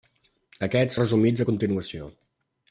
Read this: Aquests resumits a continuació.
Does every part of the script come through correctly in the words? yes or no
yes